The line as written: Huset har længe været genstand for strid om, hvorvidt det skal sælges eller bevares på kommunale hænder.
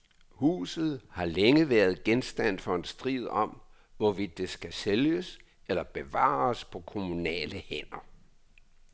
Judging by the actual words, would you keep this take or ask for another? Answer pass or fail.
fail